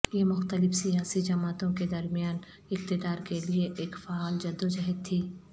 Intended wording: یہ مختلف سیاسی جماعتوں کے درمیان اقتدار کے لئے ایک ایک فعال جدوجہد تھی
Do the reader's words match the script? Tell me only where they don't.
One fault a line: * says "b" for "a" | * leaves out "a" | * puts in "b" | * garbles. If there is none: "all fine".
* leaves out "ایک"